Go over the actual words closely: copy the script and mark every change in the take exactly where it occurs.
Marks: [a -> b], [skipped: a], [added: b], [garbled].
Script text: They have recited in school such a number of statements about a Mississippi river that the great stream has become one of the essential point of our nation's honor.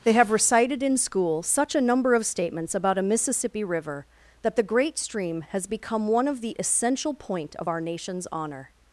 They have recited in school such a number of statements about a Mississippi river that the great stream has become one of the essential point of our nation's honor.